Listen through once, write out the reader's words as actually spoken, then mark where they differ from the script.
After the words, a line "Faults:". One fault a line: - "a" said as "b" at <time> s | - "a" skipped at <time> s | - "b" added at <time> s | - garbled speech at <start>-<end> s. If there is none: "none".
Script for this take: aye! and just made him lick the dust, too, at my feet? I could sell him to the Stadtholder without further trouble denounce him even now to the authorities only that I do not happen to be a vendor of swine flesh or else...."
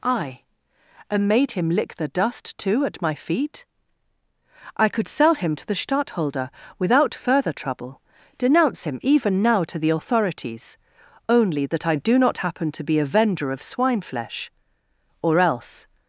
aye! and made him lick the dust, too, at my feet? I could sell him to the Stadtholder without further trouble denounce him even now to the authorities only that I do not happen to be a vendor of swine flesh or else...."
Faults:
- "just" skipped at 1.3 s